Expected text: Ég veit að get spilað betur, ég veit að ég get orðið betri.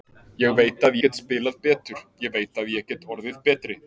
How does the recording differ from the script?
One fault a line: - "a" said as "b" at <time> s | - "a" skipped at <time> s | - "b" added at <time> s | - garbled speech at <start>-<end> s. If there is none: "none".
none